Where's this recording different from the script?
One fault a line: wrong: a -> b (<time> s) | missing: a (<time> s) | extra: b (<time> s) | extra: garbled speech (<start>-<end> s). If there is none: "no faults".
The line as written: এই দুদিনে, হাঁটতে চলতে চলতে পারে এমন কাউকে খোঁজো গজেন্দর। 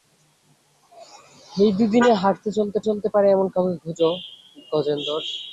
no faults